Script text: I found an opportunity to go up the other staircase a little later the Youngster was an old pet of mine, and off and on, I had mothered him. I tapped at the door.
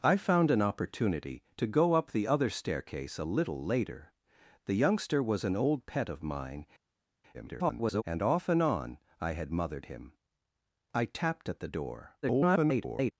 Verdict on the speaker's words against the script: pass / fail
fail